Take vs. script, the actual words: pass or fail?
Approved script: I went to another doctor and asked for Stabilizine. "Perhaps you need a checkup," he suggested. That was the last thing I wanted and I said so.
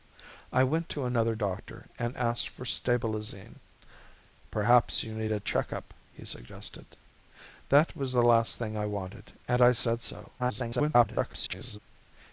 fail